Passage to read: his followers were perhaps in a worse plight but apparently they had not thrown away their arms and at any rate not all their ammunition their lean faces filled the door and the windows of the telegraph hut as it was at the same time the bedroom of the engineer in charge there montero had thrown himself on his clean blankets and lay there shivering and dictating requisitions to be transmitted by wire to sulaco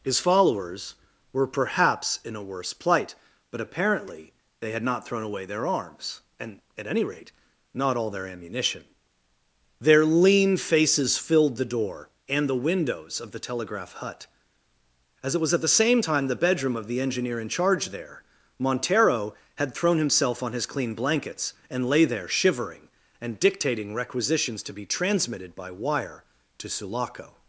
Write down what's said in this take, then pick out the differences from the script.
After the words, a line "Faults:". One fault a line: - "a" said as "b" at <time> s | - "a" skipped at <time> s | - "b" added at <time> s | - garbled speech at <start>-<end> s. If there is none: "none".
his followers were perhaps in a worse plight but apparently they had not thrown away their arms and at any rate not all their ammunition their lean faces filled the door and the windows of the telegraph hut as it was at the same time the bedroom of the engineer in charge there montero had thrown himself on his clean blankets and lay there shivering and dictating requisitions to be transmitted by wire to sulaco
Faults:
none